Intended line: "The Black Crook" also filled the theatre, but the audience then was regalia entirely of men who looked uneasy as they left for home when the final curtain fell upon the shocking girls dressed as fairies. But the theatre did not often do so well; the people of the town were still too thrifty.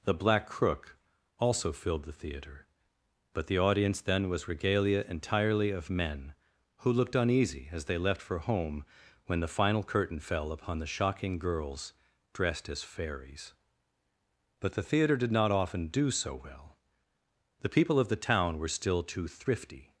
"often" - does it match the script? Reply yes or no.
yes